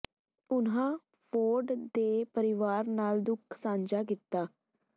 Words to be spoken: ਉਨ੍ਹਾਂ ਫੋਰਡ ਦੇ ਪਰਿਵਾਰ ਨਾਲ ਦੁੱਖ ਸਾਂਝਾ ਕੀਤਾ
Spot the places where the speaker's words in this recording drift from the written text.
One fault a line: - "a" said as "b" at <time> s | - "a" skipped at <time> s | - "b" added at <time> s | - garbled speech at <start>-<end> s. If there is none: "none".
none